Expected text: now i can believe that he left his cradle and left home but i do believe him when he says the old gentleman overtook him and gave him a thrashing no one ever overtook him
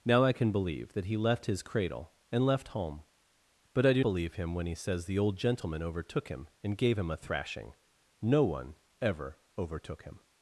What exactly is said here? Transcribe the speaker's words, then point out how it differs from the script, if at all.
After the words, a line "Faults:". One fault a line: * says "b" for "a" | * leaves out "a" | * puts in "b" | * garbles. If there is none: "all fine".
now i can believe that he left his cradle and left home but i do believe him when he says the old gentleman overtook him and gave him a thrashing no one ever overtook him
Faults:
all fine